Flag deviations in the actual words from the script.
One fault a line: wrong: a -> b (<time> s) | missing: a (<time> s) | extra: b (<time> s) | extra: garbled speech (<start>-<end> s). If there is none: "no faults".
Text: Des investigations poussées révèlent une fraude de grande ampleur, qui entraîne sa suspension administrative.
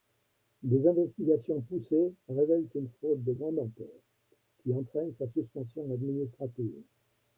no faults